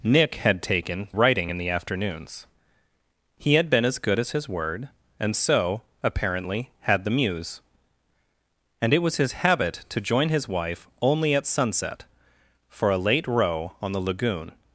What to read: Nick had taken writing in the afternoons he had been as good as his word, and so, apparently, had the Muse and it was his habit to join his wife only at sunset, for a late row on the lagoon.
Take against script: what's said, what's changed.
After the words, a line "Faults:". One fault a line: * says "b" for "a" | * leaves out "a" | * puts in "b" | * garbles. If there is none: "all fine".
Nick had taken writing in the afternoons he had been as good as his word, and so, apparently, had the Muse and it was his habit to join his wife only at sunset, for a late row on the lagoon.
Faults:
all fine